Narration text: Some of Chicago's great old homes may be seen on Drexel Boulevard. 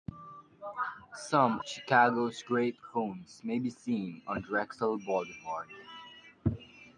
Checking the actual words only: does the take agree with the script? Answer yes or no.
no